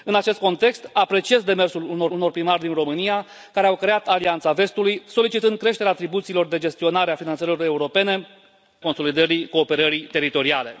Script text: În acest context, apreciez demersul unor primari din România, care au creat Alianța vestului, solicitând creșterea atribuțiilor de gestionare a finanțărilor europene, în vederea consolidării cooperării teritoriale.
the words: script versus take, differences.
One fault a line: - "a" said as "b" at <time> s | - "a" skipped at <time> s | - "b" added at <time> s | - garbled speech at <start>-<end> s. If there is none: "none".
- "unor" added at 2.1 s
- "în vederea" skipped at 8.3 s